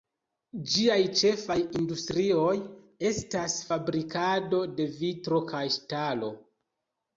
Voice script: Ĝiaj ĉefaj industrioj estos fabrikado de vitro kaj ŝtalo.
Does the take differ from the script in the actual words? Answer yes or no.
yes